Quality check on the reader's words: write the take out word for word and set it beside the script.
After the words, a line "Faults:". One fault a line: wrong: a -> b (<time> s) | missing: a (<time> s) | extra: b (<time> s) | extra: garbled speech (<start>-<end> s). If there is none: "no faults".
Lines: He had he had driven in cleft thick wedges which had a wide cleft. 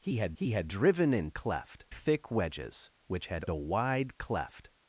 He had he had driven in cleft thick wedges which had a wide cleft.
Faults:
no faults